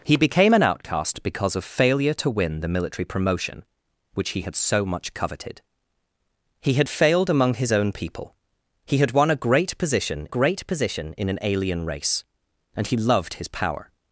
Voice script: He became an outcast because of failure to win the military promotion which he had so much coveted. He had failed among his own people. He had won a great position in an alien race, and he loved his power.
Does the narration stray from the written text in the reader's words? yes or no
yes